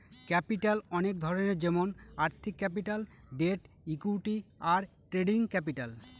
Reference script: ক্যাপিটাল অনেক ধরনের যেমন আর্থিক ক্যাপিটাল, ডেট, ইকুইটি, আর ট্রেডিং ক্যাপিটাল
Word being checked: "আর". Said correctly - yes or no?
yes